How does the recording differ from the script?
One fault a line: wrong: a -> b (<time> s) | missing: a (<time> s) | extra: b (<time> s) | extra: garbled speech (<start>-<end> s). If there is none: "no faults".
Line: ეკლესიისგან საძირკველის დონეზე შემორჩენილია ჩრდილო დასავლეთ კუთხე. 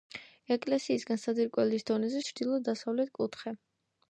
missing: შემორჩენილია (2.2 s)